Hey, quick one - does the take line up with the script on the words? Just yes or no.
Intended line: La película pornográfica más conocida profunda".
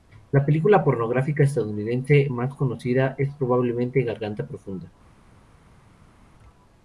no